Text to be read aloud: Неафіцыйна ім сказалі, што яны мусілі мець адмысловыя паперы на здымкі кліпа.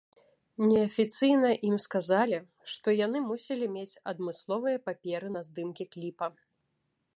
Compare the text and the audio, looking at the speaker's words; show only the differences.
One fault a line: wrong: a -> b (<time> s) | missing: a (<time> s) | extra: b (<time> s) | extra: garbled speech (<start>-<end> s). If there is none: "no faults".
no faults